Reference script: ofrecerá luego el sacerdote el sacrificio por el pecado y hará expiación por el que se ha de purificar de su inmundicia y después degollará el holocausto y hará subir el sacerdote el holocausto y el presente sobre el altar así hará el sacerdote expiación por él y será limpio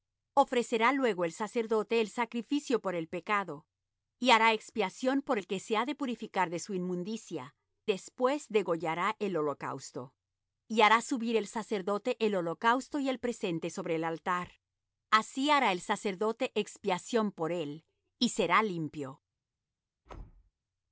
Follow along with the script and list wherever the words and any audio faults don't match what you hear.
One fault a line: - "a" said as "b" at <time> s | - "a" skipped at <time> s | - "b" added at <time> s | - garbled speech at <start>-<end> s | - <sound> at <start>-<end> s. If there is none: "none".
- "y" skipped at 7.5 s
- thud at 20.1-20.5 s